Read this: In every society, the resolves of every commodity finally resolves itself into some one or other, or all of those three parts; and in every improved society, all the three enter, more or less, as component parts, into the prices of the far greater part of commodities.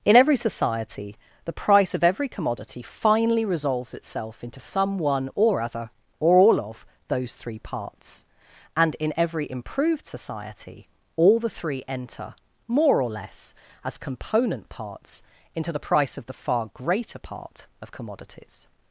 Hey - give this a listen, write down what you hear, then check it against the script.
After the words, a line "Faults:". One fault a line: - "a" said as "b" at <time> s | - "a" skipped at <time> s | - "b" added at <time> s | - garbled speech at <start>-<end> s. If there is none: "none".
In every society, the price of every commodity finally resolves itself into some one or other, or all of those three parts; and in every improved society, all the three enter, more or less, as component parts, into the price of the far greater part of commodities.
Faults:
- "resolves" said as "price" at 1.5 s
- "prices" said as "price" at 15.8 s